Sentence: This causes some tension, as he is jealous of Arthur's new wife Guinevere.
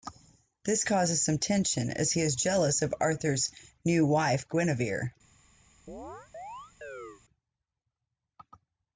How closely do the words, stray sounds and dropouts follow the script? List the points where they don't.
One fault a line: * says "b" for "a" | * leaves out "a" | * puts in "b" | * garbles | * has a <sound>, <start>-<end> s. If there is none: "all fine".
* has a chirp, 5.9-7.2 s